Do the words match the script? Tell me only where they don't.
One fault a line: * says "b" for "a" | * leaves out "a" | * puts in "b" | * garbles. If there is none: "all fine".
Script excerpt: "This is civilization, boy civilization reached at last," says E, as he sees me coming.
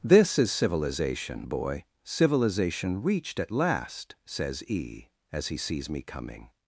all fine